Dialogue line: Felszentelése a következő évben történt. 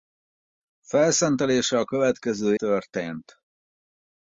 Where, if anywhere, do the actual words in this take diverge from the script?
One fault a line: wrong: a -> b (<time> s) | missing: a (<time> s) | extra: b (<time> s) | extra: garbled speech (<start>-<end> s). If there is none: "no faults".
missing: évben (2.5 s)